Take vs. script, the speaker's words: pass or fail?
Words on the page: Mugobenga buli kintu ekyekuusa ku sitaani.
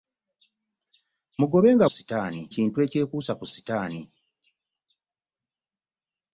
fail